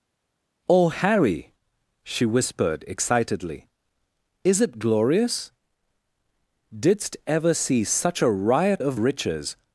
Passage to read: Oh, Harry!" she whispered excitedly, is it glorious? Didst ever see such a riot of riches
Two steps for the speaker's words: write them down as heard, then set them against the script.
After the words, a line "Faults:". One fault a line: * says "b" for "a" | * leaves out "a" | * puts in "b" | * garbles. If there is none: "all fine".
Oh, Harry!" she whispered excitedly, is it glorious? Didst ever see such a riot of riches
Faults:
all fine